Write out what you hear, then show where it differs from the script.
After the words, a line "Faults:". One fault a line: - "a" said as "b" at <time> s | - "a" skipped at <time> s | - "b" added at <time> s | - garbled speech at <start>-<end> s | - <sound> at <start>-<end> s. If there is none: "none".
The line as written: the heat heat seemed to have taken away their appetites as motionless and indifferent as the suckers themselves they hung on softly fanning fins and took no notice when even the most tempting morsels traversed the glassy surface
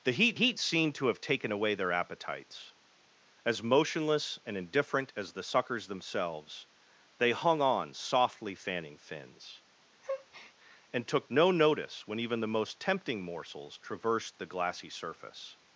the heat heat seemed to have taken away their appetites as motionless and indifferent as the suckers themselves they hung on softly fanning fins and took no notice when even the most tempting morsels traversed the glassy surface
Faults:
- breath at 10.0-10.5 s